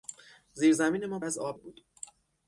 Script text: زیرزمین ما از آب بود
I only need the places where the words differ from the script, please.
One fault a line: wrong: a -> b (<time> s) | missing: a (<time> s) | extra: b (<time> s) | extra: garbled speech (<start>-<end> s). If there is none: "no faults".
no faults